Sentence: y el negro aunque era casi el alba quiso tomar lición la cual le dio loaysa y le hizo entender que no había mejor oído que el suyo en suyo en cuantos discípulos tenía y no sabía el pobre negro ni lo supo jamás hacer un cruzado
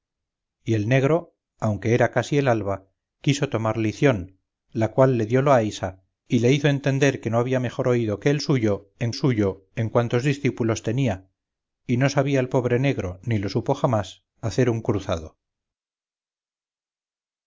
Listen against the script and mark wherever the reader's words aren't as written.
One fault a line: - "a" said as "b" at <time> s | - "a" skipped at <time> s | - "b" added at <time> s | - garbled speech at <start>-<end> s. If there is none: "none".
none